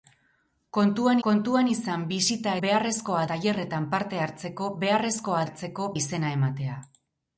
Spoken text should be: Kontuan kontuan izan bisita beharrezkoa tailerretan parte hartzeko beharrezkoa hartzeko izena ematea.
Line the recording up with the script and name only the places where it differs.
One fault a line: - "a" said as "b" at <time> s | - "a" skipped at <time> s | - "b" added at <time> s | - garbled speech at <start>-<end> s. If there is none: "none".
none